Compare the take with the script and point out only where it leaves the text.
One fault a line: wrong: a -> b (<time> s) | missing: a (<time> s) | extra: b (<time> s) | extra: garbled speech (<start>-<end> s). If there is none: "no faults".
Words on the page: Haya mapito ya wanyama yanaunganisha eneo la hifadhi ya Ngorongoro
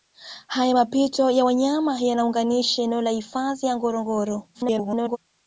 extra: garbled speech (4.5-5.2 s)